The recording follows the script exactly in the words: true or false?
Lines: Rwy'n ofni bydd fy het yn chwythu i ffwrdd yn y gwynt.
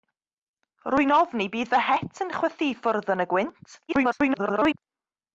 false